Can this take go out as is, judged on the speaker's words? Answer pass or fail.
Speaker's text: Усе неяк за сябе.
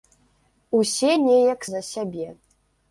pass